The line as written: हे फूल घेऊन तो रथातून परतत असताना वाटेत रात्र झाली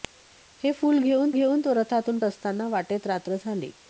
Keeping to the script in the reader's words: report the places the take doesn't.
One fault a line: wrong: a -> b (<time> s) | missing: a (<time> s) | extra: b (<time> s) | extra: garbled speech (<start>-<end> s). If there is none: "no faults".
extra: घेऊन (1.3 s)
missing: परतत (2.2 s)